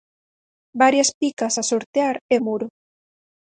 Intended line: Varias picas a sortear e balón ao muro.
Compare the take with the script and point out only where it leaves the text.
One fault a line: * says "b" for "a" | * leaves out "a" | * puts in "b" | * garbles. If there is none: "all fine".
* leaves out "balón ao"